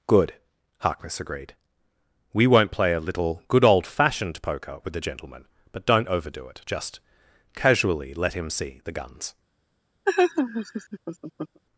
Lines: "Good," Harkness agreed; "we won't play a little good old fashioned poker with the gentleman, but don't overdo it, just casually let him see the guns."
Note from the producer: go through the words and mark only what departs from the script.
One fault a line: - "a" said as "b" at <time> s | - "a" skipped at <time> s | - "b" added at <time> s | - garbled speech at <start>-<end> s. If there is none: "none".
none